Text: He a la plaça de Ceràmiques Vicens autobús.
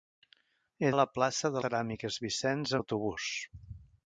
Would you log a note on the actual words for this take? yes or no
no